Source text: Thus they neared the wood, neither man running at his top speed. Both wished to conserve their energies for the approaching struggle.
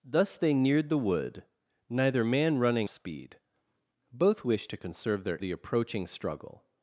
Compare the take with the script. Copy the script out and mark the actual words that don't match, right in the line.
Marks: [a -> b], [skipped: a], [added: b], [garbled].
Thus they neared the wood, neither man running [skipped: at his top] speed. Both wished to conserve their [skipped: energies for] the approaching struggle.